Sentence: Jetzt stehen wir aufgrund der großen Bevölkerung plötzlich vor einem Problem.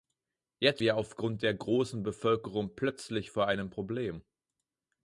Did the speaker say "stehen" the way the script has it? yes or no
no